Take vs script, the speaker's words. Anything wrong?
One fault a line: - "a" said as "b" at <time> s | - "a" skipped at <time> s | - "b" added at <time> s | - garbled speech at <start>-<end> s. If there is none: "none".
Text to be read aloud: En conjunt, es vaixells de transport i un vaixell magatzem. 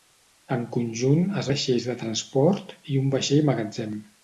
none